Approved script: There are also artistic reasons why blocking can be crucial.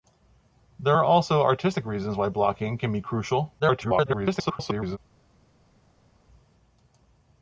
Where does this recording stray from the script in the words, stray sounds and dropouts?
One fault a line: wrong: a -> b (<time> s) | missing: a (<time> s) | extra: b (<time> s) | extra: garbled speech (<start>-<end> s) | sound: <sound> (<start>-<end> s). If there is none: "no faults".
extra: garbled speech (3.6-5.0 s)